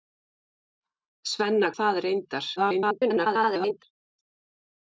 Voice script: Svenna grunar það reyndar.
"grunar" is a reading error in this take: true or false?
true